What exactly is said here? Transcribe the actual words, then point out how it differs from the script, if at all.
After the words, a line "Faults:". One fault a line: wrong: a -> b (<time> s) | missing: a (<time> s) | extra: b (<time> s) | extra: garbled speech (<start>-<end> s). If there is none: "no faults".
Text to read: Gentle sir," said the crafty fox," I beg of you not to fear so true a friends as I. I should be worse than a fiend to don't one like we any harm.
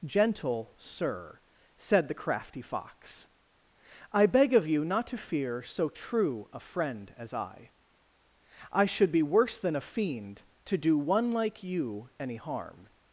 Gentle sir," said the crafty fox," I beg of you not to fear so true a friend as I. I should be worse than a fiend to do one like you any harm.
Faults:
wrong: friends -> friend (6.6 s)
wrong: don't -> do (10.8 s)
wrong: we -> you (11.6 s)